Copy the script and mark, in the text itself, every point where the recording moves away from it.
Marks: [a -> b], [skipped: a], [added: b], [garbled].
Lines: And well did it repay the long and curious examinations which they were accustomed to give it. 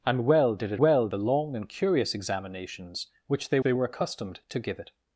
And well did it [repay -> well] the long and curious examinations which they [added: they] were accustomed to give it.